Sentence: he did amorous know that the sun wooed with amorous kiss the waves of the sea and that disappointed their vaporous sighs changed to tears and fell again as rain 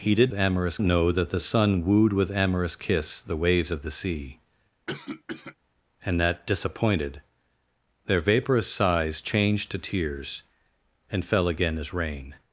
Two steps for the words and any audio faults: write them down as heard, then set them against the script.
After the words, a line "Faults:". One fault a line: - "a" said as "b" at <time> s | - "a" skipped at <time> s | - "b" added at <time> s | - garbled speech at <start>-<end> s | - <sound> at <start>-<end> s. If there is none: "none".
he did amorous know that the sun wooed with amorous kiss the waves of the sea and that disappointed their vaporous sighs changed to tears and fell again as rain
Faults:
- cough at 4.9-5.6 s